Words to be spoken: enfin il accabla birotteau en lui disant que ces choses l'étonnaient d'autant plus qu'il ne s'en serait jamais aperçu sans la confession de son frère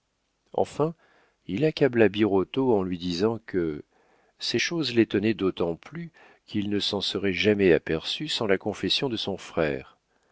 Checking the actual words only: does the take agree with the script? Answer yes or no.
yes